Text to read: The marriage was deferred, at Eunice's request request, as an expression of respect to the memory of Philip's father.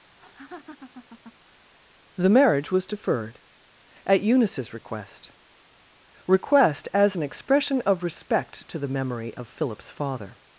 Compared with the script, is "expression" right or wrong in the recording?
right